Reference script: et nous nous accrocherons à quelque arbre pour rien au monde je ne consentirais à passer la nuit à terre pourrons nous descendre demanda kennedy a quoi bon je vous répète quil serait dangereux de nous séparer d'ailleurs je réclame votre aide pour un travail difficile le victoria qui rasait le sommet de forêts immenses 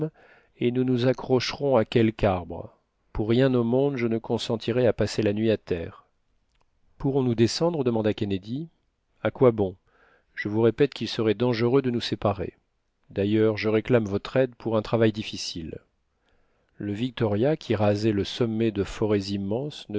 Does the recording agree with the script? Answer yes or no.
yes